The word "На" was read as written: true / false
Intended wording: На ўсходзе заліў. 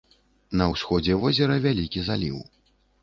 true